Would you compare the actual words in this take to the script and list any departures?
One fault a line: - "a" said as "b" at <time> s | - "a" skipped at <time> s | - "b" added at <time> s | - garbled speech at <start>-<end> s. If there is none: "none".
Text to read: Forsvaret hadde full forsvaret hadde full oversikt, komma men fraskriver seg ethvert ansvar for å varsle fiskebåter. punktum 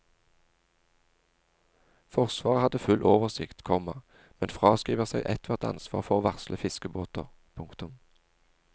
- "forsvaret hadde full" skipped at 3.0 s